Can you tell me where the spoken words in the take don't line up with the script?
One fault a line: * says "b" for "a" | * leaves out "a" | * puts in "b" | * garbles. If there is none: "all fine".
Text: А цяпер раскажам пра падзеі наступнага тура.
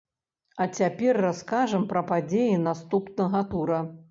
all fine